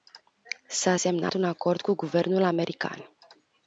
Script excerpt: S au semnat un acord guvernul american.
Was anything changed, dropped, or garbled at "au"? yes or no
yes